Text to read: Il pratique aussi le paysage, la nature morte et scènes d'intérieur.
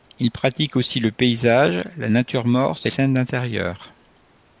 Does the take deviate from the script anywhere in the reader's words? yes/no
no